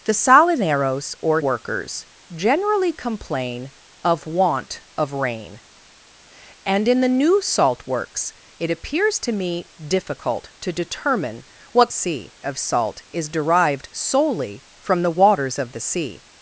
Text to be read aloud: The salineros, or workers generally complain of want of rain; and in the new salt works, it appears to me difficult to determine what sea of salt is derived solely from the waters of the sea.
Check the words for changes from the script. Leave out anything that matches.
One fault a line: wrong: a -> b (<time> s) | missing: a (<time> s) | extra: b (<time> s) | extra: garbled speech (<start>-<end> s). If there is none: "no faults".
no faults